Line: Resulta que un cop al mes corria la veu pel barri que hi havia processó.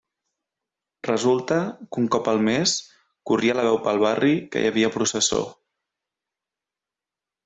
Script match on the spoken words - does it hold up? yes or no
yes